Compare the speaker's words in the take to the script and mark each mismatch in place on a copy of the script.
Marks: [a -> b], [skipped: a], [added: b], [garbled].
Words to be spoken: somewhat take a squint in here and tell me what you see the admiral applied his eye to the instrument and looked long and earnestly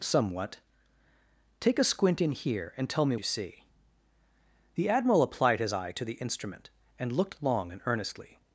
somewhat take a squint in here and tell me [skipped: what] you see the admiral applied his eye to the instrument and looked long and earnestly